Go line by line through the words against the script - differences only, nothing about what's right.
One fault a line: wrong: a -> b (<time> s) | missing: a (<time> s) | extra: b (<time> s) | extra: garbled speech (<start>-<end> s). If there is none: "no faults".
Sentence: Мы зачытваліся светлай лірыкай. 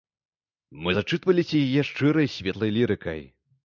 extra: яе шчырай (1.5 s)